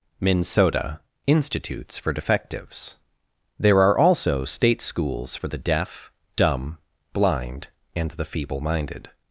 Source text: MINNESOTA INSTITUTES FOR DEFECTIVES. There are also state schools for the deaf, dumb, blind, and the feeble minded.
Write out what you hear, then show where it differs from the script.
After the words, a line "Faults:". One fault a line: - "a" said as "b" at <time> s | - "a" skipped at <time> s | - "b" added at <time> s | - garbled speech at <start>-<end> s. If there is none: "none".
MINNESOTA INSTITUTES FOR DEFECTIVES. There are also state schools for the deaf, dumb, blind, and the feeble minded.
Faults:
none